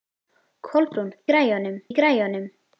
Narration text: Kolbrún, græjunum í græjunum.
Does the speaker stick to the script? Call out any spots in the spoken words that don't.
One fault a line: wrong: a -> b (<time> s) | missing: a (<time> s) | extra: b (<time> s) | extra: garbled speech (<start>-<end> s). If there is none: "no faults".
no faults